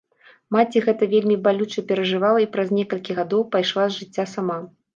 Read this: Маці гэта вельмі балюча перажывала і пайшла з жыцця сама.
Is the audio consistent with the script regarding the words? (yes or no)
no